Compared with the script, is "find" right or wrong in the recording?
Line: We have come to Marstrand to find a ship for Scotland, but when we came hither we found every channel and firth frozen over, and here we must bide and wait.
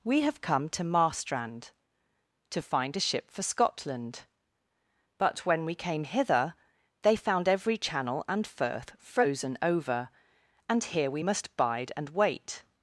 right